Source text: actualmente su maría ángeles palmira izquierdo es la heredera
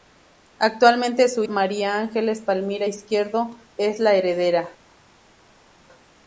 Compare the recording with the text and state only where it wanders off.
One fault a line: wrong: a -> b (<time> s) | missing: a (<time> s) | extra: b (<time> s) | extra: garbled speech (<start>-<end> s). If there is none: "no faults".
no faults